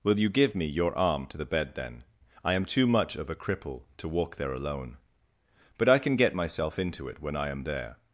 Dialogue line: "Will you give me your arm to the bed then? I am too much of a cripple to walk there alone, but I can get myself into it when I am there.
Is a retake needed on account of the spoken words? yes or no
no